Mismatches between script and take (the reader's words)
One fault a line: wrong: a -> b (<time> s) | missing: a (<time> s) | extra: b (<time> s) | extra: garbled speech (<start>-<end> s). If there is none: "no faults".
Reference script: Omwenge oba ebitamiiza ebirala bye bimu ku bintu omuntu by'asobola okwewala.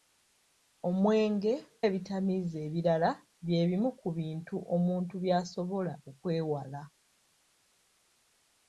missing: oba (1.5 s)